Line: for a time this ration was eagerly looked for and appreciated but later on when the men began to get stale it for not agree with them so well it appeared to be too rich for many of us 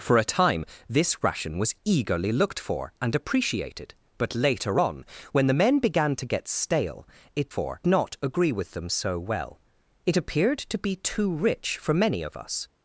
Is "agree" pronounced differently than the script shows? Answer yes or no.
no